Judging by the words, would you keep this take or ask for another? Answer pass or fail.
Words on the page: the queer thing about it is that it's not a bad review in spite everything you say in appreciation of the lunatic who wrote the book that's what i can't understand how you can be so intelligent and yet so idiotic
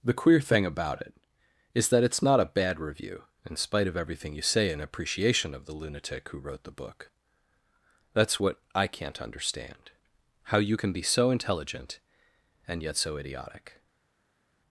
fail